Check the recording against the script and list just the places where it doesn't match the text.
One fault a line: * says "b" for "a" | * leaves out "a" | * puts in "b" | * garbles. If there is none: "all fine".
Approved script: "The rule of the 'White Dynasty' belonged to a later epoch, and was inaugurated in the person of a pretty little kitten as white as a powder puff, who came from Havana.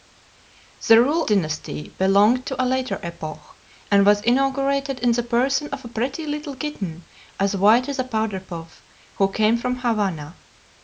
* leaves out "of the White"